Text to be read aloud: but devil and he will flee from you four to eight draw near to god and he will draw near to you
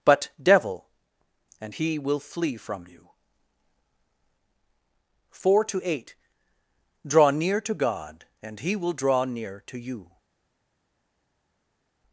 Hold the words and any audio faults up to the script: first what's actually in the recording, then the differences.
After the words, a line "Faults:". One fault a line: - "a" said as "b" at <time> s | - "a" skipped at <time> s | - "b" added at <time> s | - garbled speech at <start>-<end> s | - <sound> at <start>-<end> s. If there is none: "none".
but devil and he will flee from you four to eight draw near to god and he will draw near to you
Faults:
none